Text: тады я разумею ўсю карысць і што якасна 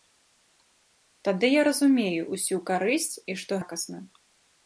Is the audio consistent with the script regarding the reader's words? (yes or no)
yes